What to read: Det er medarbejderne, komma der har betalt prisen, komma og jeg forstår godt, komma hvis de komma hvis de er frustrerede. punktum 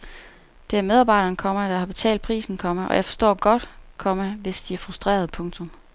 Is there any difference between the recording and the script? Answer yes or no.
yes